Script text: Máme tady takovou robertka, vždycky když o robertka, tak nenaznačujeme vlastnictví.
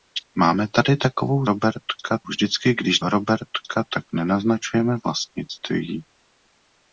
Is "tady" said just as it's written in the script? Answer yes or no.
yes